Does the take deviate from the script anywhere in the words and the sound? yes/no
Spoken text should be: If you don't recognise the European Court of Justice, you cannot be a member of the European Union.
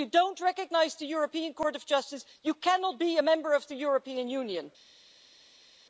no